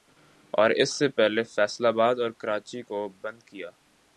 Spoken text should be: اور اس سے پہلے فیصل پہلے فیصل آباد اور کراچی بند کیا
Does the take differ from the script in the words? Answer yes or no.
yes